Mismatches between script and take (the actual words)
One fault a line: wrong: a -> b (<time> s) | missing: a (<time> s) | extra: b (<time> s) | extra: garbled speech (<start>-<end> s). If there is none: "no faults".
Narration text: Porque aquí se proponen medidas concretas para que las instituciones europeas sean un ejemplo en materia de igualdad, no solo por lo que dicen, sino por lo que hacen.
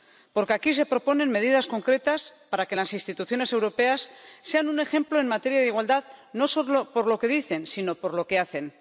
no faults